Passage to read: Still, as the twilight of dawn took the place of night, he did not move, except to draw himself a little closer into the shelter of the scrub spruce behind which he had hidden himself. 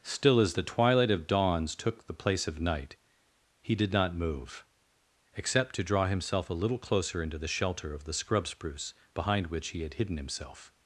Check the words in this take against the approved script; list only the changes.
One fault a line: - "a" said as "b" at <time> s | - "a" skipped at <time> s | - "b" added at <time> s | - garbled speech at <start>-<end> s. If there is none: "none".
- "dawn" said as "dawns" at 1.3 s